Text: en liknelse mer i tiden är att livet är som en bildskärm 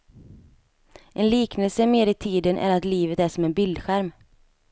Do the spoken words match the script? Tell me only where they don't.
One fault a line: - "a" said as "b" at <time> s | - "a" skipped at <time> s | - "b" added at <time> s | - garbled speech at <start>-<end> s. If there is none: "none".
none